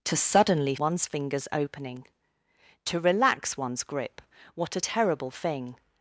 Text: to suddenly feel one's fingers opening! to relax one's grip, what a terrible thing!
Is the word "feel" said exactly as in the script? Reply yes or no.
no